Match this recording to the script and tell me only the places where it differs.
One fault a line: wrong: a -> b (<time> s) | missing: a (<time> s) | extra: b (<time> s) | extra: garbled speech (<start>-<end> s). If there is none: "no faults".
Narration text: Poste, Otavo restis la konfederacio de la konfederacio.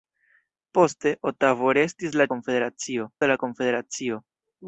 no faults